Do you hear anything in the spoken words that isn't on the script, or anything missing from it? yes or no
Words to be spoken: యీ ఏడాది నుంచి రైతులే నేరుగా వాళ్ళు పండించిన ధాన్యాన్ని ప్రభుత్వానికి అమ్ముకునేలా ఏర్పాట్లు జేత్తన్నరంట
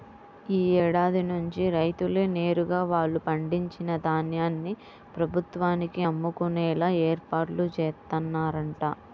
no